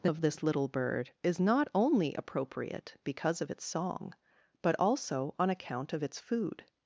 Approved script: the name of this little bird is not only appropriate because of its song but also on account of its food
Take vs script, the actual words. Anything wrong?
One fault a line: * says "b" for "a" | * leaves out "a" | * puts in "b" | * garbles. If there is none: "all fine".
* leaves out "name"